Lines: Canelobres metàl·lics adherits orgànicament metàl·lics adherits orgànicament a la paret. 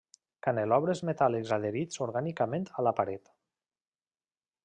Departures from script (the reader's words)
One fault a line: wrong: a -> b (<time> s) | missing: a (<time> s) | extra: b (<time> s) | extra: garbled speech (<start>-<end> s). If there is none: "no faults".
missing: metàl·lics adherits orgànicament (2.7 s)